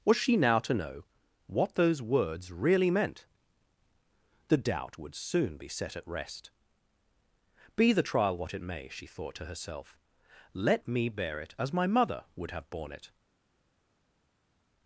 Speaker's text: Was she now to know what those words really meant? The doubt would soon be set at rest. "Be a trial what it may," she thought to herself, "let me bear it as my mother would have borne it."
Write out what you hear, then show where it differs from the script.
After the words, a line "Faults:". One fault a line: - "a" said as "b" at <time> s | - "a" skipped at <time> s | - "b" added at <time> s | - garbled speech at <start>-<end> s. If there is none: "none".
Was she now to know what those words really meant? The doubt would soon be set at rest. "Be the trial what it may," she thought to herself, "let me bear it as my mother would have borne it."
Faults:
- "a" said as "the" at 7.9 s